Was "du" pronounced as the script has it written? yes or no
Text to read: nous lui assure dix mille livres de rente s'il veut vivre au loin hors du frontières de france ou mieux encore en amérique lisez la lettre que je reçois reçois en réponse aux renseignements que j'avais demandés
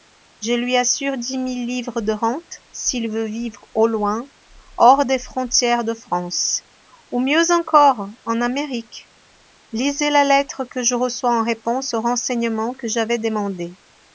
no